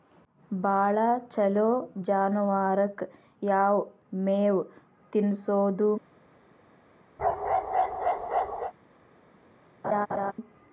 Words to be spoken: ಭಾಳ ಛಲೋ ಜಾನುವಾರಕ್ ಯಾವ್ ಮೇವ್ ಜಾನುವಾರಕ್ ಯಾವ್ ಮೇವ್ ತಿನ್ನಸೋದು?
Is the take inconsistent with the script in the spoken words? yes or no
yes